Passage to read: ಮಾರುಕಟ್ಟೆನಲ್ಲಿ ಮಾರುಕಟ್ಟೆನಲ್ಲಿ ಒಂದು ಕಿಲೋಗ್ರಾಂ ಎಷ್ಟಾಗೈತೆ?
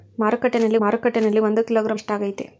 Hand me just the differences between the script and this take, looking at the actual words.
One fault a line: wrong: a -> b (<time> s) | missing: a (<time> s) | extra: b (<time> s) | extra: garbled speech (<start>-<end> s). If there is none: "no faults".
no faults